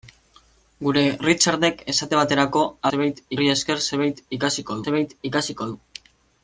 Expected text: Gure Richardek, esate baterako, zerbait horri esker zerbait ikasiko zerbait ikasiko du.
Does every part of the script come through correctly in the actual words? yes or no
yes